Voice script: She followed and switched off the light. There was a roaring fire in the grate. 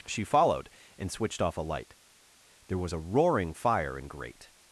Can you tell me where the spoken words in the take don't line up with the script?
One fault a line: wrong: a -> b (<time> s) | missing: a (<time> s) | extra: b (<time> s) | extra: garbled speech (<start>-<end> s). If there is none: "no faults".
wrong: the -> a (1.6 s)
missing: the (4.1 s)